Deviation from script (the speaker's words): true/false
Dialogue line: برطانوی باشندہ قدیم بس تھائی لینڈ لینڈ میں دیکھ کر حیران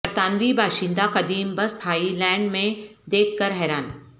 true